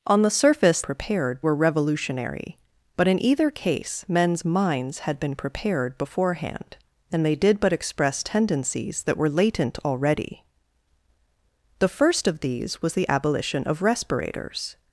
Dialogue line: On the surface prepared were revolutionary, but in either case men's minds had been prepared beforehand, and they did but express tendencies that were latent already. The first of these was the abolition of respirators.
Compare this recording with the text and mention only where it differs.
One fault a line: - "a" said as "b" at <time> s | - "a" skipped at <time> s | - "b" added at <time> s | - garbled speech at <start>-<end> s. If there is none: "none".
none